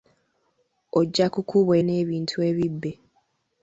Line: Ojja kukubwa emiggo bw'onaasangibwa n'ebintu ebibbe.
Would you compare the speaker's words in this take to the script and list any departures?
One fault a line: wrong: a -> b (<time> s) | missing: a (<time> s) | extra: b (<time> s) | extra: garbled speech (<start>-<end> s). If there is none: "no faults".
missing: emiggo bw'onaasangibwa (1.7 s)